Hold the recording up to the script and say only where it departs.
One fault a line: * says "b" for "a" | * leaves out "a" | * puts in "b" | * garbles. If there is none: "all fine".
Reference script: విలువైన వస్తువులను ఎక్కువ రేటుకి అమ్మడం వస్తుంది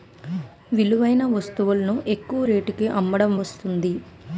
all fine